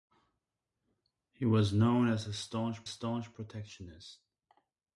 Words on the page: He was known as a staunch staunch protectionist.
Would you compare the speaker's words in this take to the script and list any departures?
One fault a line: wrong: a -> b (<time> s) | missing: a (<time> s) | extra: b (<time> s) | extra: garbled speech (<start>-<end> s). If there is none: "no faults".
no faults